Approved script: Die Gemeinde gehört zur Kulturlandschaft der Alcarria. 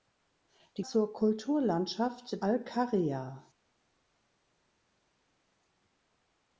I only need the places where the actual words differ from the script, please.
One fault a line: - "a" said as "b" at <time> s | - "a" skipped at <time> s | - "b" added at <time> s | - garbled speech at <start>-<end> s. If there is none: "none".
- "Gemeinde gehört" skipped at 0.8 s
- "der" skipped at 2.4 s